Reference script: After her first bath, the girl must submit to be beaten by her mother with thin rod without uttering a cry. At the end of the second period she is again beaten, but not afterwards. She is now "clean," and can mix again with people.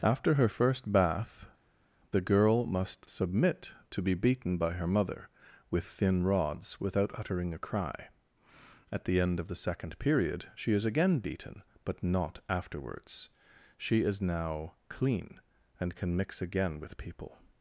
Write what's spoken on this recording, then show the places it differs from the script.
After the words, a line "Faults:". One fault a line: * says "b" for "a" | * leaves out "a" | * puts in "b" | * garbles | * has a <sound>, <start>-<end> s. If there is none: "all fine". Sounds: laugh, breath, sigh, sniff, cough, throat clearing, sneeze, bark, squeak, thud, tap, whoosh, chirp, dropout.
After her first bath, the girl must submit to be beaten by her mother with thin rods without uttering a cry. At the end of the second period she is again beaten, but not afterwards. She is now "clean," and can mix again with people.
Faults:
* says "rods" for "rod"